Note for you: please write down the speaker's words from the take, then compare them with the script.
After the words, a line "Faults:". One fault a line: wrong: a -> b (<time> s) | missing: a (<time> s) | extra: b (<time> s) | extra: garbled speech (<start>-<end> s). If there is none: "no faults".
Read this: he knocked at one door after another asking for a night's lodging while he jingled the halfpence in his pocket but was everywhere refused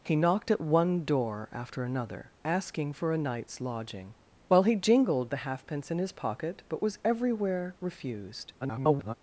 he knocked at one door after another asking for a night's lodging while he jingled the halfpence in his pocket but was everywhere refused [garbled]
Faults:
extra: garbled speech (8.6-9.1 s)